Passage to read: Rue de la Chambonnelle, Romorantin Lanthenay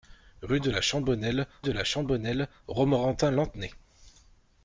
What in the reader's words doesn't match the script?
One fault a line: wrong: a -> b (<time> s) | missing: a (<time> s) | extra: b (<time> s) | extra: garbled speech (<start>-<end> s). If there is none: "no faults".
extra: de la Chambonnelle (1.6 s)